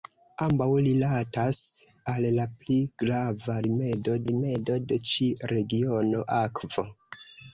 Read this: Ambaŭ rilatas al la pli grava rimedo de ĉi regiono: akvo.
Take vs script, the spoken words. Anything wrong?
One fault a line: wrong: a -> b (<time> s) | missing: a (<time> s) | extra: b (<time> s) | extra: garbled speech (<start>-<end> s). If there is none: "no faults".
extra: rimedo (4.3 s)